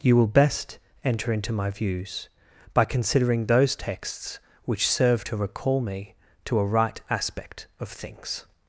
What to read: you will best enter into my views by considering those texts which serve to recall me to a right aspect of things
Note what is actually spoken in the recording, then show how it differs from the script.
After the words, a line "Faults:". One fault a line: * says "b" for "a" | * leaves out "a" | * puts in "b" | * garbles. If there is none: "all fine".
you will best enter into my views by considering those texts which serve to recall me to a right aspect of things
Faults:
all fine